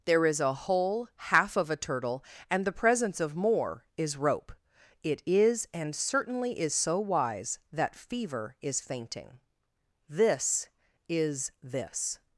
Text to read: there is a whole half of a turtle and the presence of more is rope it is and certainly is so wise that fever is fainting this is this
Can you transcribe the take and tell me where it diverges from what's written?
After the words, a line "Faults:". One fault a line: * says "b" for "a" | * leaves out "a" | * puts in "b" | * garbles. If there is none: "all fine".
there is a whole half of a turtle and the presence of more is rope it is and certainly is so wise that fever is fainting this is this
Faults:
all fine